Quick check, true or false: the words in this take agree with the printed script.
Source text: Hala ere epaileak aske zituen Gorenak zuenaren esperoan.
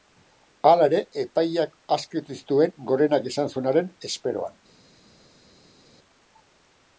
false